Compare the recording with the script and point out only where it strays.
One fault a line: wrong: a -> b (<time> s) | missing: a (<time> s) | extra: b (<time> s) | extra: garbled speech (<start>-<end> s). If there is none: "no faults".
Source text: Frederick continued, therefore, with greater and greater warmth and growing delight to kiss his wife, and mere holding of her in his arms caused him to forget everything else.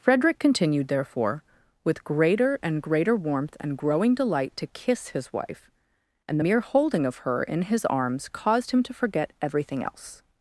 no faults